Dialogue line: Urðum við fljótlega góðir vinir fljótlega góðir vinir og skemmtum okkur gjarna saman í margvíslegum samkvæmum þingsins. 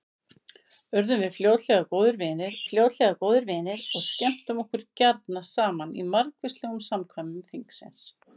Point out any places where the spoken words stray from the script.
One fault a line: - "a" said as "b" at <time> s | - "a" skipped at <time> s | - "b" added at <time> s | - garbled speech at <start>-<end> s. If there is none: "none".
none